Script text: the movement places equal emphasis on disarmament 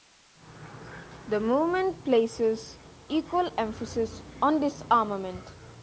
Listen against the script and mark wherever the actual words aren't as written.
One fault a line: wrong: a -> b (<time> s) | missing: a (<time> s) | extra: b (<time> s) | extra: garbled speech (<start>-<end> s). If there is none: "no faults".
no faults